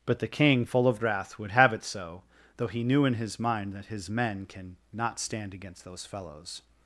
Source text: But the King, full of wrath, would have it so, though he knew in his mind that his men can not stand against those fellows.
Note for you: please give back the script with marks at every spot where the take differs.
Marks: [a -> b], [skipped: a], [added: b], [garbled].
But the King, full of wrath, would have it so, though he knew in his mind that his men can not stand against those fellows.